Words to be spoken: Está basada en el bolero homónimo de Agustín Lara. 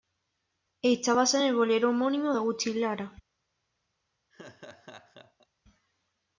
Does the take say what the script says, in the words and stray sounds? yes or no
no